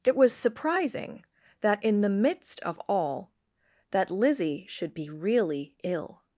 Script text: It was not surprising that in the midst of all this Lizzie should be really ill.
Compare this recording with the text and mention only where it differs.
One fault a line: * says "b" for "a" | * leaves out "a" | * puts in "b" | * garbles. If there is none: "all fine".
* leaves out "not"
* says "that" for "this"